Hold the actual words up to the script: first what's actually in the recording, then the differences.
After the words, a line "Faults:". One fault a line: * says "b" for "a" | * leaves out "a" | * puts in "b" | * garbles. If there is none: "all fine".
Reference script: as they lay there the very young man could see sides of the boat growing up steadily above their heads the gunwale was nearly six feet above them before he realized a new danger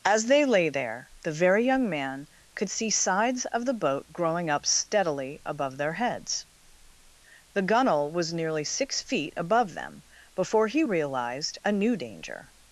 as they lay there the very young man could see sides of the boat growing up steadily above their heads the gunwale was nearly six feet above them before he realized a new danger
Faults:
all fine